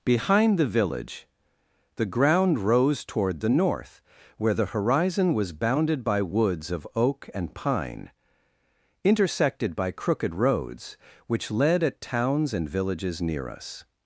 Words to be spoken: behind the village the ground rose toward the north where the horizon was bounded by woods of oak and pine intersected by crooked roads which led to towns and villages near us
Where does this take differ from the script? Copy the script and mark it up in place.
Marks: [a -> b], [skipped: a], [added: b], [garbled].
behind the village the ground rose toward the north where the horizon was bounded by woods of oak and pine intersected by crooked roads which led [to -> at] towns and villages near us